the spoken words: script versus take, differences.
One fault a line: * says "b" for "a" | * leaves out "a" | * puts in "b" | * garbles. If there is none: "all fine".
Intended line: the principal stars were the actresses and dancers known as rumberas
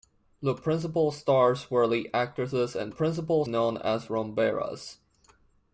* says "principal" for "dancers"